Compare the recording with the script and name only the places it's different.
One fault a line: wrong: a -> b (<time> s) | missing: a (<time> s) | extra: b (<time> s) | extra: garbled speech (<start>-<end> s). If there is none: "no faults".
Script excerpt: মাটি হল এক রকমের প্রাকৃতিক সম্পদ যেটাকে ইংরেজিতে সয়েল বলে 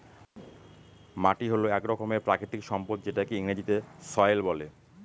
no faults